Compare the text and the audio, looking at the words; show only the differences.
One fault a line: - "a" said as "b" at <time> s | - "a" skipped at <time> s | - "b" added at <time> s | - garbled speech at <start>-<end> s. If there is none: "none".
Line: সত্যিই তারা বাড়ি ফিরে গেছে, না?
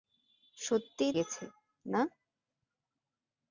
- "তারা বাড়ি ফিরে" skipped at 1.1 s